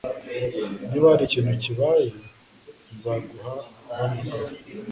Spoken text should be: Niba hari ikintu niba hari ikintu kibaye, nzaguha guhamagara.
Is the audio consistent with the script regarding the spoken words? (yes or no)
no